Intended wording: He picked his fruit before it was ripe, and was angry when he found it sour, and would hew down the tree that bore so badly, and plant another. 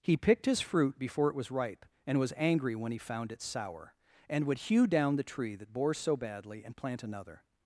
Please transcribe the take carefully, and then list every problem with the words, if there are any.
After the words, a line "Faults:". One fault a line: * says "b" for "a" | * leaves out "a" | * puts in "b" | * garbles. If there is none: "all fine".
He picked his fruit before it was ripe, and was angry when he found it sour, and would hew down the tree that bore so badly, and plant another.
Faults:
all fine